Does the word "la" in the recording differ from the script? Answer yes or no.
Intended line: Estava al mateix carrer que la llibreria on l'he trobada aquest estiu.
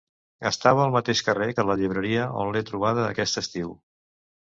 no